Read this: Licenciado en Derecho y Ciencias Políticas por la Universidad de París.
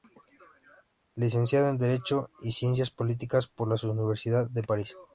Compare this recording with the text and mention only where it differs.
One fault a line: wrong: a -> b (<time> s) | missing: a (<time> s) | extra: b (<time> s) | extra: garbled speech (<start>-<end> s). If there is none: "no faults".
no faults